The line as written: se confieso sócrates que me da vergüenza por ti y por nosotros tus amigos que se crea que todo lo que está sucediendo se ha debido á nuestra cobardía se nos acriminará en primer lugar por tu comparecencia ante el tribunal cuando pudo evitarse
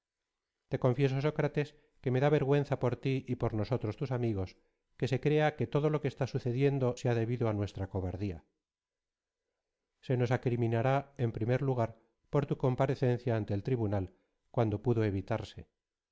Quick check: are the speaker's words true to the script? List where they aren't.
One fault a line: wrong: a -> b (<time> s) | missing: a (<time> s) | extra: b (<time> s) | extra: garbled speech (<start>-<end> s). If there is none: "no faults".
wrong: se -> te (0.7 s)